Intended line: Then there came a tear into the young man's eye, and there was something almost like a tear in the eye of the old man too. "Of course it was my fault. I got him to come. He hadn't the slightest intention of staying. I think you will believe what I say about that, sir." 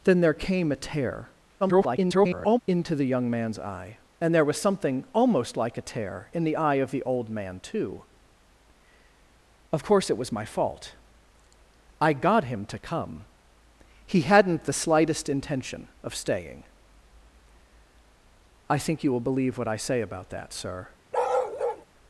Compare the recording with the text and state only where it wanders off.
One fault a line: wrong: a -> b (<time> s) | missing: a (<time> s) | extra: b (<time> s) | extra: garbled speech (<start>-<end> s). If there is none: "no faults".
extra: garbled speech (1.6-2.6 s)